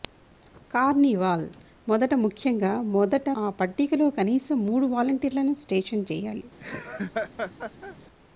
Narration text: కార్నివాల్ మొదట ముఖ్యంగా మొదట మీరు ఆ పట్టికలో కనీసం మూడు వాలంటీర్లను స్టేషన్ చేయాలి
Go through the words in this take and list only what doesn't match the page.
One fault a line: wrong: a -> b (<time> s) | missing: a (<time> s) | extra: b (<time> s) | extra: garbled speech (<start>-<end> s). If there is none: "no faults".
missing: మీరు (3.3 s)